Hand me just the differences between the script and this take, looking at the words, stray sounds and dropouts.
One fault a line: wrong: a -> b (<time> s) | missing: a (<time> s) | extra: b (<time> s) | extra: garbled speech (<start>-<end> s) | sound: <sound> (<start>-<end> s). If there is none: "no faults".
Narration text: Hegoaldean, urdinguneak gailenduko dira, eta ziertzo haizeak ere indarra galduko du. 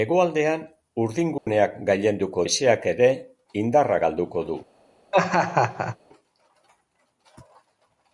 sound: dropout (1.4-1.5 s)
missing: dira eta ziertzo (2.5 s)
sound: laugh (5.1-6.0 s)